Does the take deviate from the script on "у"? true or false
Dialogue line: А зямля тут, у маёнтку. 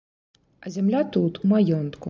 true